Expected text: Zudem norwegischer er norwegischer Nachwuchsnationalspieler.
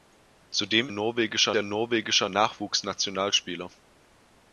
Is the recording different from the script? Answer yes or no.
no